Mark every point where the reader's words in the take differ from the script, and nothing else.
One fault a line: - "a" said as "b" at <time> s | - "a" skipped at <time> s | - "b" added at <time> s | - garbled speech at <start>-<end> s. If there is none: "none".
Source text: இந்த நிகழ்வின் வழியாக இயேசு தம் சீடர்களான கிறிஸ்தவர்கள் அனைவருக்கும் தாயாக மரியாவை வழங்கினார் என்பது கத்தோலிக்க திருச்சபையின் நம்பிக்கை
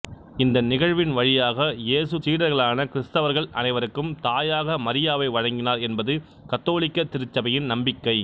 - "தம்" skipped at 2.2 s